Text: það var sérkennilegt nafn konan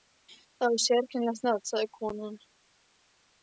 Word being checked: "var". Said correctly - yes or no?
yes